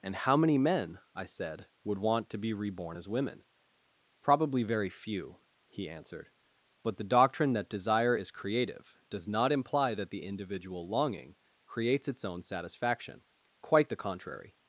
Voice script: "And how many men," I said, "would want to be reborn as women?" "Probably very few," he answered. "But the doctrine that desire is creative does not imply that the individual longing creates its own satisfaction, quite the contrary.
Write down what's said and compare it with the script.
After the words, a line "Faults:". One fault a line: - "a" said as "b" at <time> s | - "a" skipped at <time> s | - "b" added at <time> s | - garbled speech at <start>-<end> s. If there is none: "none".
"And how many men," I said, "would want to be reborn as women?" "Probably very few," he answered. "But the doctrine that desire is creative does not imply that the individual longing creates its own satisfaction, quite the contrary.
Faults:
none